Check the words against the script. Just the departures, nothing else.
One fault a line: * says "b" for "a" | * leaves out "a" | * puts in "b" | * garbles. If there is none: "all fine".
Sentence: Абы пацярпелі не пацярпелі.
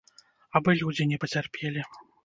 * says "людзі" for "пацярпелі"